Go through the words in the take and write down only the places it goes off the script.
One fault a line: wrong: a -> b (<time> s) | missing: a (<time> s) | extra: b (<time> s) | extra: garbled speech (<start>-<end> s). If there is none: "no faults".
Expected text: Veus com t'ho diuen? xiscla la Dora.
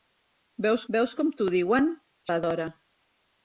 extra: veus (0.9 s)
missing: xiscla (1.9 s)